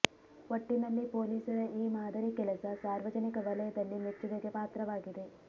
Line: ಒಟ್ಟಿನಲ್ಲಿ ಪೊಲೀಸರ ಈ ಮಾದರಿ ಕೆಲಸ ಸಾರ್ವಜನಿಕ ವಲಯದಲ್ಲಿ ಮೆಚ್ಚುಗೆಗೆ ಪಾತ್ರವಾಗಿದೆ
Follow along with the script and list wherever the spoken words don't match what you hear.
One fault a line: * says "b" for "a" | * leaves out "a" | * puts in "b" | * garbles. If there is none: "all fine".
all fine